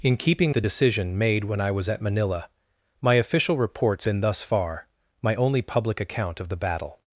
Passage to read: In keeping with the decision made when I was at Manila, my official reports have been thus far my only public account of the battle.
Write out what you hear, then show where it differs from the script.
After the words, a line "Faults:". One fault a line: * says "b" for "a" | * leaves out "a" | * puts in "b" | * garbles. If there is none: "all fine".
In keeping the decision made when I was at Manila, my official reports been thus far my only public account of the battle.
Faults:
* leaves out "with"
* leaves out "have"